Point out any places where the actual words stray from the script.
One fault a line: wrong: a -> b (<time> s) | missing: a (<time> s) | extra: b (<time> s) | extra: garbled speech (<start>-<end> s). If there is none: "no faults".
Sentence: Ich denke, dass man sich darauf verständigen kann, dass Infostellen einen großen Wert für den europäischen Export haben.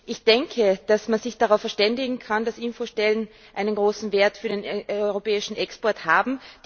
no faults